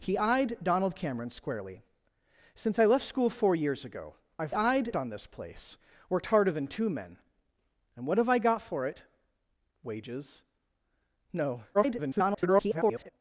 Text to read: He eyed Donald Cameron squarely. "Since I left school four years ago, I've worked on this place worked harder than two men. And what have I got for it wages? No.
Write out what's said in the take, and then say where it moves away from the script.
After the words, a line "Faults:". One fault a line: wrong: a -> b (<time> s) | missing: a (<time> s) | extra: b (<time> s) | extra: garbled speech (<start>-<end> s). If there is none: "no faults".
He eyed Donald Cameron squarely. "Since I left school four years ago, I've eyed on this place worked harder than two men. And what have I got for it wages? No. [garbled]
Faults:
wrong: worked -> eyed (4.5 s)
extra: garbled speech (11.7-13.1 s)